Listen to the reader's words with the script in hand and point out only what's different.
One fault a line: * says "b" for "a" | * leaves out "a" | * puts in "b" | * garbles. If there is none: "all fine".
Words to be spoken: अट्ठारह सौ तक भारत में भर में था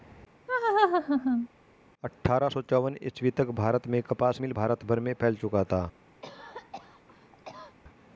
* puts in "चौवन ईस्वी"
* puts in "कपास मिल भारत"
* puts in "फैल चुका"